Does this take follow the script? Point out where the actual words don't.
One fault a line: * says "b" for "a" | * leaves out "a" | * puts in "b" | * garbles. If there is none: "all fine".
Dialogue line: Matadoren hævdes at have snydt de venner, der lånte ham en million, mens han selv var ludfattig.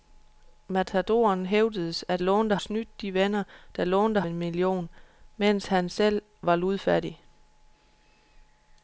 * says "lånte" for "have"
* leaves out "ham"